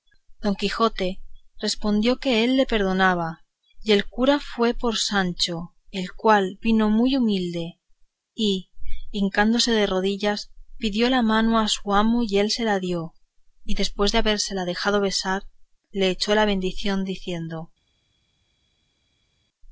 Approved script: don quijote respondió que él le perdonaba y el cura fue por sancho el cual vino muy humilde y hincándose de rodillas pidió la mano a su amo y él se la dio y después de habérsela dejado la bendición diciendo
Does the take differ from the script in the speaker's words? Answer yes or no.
yes